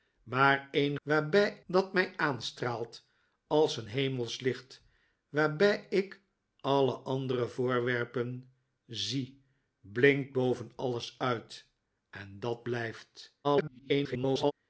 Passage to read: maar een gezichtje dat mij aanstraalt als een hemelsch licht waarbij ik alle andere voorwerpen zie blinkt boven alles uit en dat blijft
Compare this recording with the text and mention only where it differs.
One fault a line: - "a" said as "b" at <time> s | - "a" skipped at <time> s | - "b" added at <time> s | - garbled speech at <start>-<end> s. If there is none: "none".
- "gezichtje" said as "waarbij" at 1.0 s
- garbled speech at 13.4-14.5 s